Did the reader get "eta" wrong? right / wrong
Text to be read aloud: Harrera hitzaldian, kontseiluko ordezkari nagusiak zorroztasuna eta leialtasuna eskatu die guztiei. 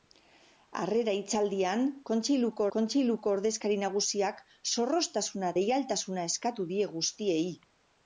wrong